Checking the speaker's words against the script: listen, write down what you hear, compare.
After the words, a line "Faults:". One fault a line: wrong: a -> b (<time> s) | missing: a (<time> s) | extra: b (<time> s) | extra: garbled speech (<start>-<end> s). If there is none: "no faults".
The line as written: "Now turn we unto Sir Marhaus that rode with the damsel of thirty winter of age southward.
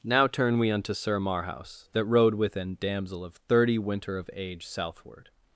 "Now turn we unto Sir Marhaus that rode with an damsel of thirty winter of age southward.
Faults:
wrong: the -> an (2.5 s)